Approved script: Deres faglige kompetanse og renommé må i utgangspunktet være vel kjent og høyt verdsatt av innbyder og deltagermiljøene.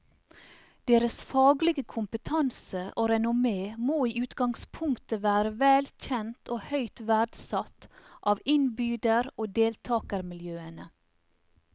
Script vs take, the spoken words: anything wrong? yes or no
no